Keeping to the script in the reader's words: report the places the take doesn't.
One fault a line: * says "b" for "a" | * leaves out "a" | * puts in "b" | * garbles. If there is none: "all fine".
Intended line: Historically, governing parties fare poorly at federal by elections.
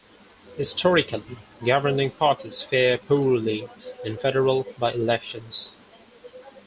* says "in" for "at"